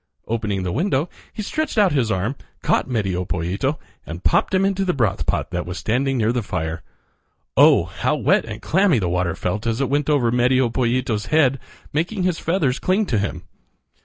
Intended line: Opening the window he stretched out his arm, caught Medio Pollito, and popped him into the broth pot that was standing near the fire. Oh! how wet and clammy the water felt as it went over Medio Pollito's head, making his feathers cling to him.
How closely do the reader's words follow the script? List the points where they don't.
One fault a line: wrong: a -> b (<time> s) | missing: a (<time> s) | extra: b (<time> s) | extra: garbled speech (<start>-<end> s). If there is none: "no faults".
no faults